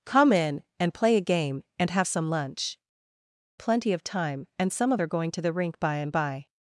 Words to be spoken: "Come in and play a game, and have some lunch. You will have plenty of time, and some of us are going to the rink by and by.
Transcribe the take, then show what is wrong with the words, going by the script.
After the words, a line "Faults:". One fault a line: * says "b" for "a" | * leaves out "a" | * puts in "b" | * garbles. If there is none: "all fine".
"Come in and play a game, and have some lunch. Plenty of time, and some of are going to the rink by and by.
Faults:
* leaves out "You will have"
* leaves out "us"